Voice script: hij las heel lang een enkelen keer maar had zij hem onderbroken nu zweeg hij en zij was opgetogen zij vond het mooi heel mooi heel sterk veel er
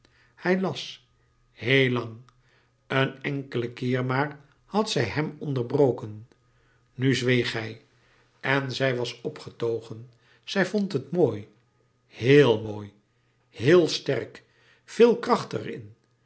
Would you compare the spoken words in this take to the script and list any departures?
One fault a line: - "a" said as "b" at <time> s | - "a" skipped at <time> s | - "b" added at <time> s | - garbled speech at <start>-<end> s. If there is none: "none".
- "kracht" added at 15.2 s